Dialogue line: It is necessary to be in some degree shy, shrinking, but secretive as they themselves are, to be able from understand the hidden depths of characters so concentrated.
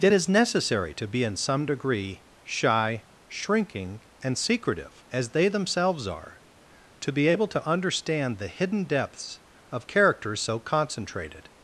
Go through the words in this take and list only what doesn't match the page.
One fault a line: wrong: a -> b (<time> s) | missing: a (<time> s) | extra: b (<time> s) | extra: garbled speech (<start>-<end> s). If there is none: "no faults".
wrong: but -> and (4.2 s)
wrong: from -> to (7.5 s)